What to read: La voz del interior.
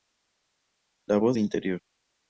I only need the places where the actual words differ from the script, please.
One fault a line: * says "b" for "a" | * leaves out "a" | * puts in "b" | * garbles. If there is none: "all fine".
* leaves out "del"